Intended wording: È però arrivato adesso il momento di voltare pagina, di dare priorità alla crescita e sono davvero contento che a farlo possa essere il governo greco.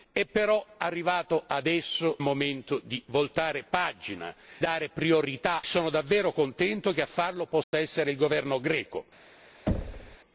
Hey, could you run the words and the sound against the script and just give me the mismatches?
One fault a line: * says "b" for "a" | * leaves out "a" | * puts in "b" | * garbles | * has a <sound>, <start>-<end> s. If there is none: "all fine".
* leaves out "il"
* leaves out "di"
* leaves out "alla crescita e"
* has a dropout, 7.6-7.7 s
* has a thud, 9.7-10.2 s